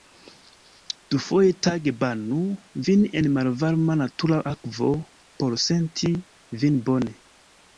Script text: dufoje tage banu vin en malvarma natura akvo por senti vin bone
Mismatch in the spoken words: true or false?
false